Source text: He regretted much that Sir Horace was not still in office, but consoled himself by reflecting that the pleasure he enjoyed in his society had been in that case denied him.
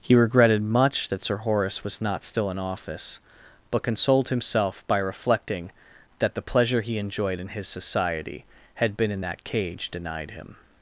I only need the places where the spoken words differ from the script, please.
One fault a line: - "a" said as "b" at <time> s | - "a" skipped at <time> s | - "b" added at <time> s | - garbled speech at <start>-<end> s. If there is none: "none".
- "case" said as "cage" at 9.4 s